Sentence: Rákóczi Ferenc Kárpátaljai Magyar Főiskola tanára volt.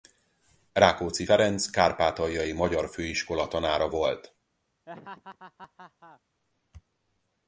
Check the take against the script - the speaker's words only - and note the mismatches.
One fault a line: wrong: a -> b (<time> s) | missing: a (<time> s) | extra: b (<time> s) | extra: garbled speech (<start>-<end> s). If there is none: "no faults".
no faults